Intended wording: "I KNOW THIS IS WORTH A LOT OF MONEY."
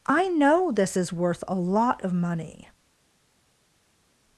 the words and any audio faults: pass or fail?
pass